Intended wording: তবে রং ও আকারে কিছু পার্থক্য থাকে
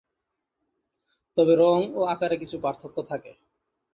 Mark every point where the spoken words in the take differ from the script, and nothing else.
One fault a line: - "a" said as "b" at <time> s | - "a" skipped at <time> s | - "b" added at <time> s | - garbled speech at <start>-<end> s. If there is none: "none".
none